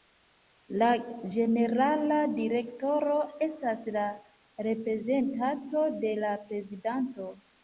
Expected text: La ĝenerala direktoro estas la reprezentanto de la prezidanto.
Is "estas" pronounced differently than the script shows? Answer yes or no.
no